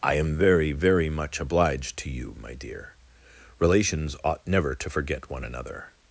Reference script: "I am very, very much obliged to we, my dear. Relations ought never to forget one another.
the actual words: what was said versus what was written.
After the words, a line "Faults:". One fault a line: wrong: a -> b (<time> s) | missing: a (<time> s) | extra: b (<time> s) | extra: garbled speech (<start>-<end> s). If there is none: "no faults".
"I am very, very much obliged to you, my dear. Relations ought never to forget one another.
Faults:
wrong: we -> you (2.1 s)